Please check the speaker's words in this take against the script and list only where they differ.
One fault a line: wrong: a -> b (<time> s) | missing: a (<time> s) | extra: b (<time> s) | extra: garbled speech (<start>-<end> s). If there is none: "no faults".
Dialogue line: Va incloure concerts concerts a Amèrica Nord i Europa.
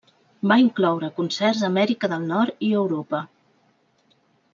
missing: concerts (1.6 s)
extra: del (2.1 s)